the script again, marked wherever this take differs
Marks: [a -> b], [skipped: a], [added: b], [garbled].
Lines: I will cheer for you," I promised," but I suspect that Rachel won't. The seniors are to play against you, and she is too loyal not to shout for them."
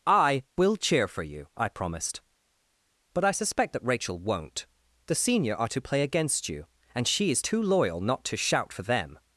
I will cheer for you," I promised," but I suspect that Rachel won't. The [seniors -> senior] are to play against you, and she is too loyal not to shout for them."